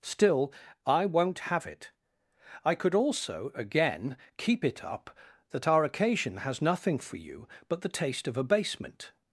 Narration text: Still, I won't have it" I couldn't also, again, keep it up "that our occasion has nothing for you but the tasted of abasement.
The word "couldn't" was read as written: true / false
false